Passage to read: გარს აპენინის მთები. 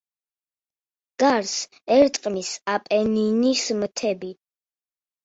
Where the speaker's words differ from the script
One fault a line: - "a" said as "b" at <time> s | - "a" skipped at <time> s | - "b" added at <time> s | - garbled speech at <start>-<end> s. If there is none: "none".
- "ერტყმის" added at 1.9 s